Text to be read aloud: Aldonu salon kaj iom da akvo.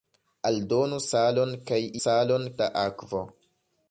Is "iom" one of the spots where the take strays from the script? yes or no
yes